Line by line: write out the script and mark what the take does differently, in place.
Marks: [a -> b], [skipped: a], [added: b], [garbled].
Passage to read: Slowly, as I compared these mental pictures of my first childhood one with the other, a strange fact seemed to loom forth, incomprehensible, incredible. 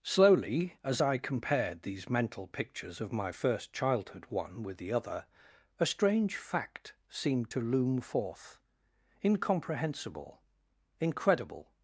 Slowly, as I compared these mental pictures of my first childhood one with the other, a strange fact seemed to loom forth, incomprehensible, incredible.